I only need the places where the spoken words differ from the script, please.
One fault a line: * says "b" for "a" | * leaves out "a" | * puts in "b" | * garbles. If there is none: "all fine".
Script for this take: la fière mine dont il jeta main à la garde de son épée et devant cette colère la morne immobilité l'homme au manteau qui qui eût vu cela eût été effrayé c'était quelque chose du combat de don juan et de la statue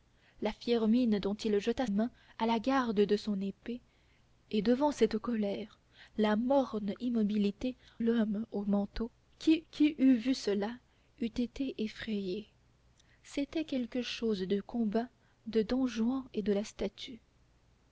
all fine